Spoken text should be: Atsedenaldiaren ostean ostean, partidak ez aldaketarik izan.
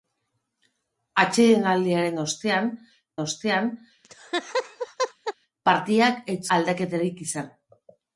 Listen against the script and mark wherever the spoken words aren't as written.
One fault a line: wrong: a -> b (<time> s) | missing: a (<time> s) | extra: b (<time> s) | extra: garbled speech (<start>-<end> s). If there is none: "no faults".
no faults